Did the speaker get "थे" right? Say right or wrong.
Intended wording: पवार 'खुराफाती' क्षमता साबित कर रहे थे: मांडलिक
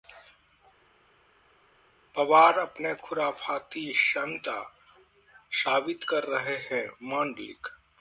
wrong